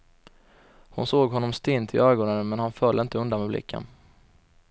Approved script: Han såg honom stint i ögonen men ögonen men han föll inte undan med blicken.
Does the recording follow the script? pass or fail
fail